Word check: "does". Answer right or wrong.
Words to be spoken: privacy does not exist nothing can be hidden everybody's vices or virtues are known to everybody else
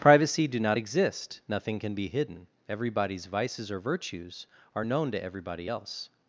wrong